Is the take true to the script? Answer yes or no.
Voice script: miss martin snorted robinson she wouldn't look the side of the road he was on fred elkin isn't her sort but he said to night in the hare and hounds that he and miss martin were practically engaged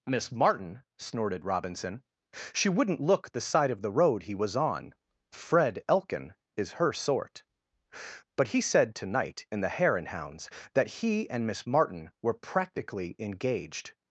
no